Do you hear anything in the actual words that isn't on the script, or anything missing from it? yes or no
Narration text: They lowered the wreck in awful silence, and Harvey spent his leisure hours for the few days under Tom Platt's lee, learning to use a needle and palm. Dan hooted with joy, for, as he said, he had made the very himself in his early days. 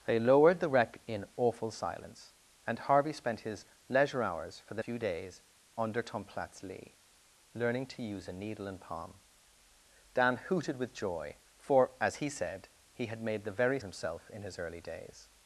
no